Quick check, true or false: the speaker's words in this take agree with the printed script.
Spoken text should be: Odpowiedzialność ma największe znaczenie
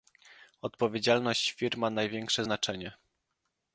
false